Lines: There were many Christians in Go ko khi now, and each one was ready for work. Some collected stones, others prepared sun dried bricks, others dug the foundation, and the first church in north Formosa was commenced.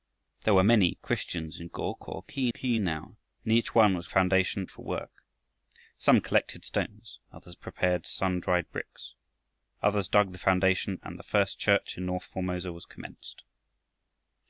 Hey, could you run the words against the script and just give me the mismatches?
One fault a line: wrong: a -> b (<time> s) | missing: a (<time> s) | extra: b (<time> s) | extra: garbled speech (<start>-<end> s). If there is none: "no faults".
extra: khi (2.5 s)
wrong: ready -> foundation (4.1 s)